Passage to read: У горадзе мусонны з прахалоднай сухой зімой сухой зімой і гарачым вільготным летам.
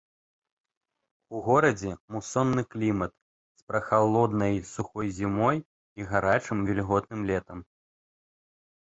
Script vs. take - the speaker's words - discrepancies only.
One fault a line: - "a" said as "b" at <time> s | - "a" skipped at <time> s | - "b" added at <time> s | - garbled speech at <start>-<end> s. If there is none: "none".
- "клімат" added at 2.8 s
- "сухой зімой" skipped at 5.6 s